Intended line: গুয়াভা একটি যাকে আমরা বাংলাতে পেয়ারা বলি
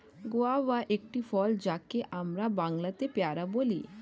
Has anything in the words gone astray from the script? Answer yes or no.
yes